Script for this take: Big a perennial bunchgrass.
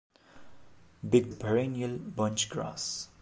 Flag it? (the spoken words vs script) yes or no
no